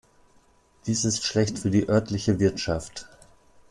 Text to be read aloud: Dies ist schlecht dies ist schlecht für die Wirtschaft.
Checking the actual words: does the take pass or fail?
fail